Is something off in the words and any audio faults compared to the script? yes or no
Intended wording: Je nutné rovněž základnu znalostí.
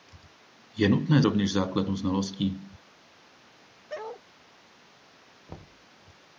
yes